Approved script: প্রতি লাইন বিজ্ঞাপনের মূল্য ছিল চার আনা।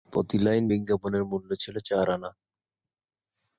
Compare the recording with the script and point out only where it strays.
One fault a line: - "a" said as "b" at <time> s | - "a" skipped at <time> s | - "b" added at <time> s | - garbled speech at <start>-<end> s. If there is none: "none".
none